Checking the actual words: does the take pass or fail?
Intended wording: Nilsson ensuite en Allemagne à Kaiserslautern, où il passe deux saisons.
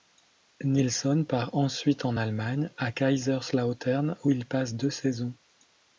fail